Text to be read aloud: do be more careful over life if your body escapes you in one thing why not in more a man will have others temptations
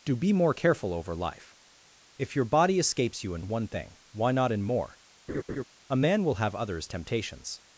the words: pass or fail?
pass